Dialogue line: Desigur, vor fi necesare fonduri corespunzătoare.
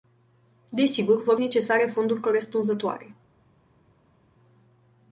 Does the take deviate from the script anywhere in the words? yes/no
yes